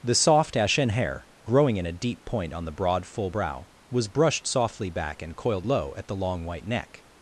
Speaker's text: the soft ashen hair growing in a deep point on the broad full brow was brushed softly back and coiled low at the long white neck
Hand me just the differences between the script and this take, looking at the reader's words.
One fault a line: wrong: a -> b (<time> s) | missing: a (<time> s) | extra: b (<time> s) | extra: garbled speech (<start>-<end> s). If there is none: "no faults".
no faults